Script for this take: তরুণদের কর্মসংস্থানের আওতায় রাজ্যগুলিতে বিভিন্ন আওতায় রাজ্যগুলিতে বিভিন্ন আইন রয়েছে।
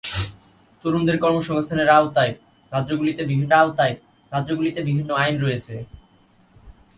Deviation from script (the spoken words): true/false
false